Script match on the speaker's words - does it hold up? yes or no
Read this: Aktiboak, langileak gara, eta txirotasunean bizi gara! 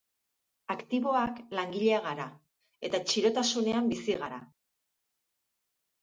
yes